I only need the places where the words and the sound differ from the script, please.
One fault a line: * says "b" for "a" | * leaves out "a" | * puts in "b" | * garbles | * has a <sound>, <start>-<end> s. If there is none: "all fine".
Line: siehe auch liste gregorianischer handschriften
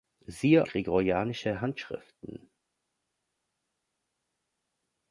* leaves out "auch liste"